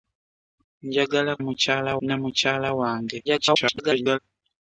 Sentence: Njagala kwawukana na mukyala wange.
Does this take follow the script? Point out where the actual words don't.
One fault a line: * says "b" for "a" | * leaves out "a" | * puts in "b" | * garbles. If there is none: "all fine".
* says "mukyala" for "kwawukana"
* garbles